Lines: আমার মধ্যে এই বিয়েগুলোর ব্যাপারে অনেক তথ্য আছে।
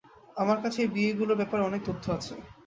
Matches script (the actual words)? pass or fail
fail